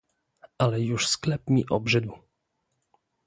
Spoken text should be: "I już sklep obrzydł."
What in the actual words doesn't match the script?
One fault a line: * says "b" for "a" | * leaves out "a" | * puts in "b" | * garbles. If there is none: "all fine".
* says "Ale" for "I"
* puts in "mi"